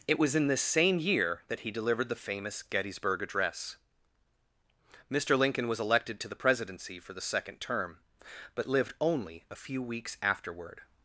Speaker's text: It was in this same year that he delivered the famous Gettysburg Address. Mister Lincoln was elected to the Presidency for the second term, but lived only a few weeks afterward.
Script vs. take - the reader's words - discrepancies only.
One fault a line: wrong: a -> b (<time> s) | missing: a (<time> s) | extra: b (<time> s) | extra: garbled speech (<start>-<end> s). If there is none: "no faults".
no faults